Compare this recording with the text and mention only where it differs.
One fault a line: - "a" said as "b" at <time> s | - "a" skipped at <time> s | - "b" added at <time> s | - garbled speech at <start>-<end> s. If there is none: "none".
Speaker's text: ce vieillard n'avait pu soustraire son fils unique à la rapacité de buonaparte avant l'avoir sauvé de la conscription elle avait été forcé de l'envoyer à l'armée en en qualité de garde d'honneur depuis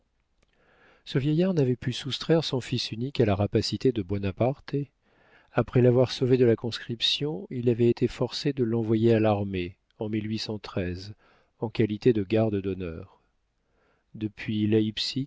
- "avant" said as "après" at 5.5 s
- "elle" said as "il" at 7.5 s